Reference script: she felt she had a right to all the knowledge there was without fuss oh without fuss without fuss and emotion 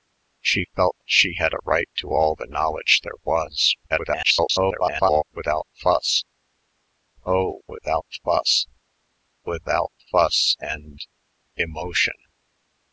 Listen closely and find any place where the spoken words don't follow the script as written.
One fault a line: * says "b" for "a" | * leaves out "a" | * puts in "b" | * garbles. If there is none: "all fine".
* garbles